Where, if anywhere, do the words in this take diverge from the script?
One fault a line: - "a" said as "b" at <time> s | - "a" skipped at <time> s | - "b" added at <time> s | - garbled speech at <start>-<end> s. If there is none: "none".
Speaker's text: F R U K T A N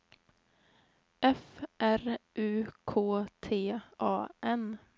none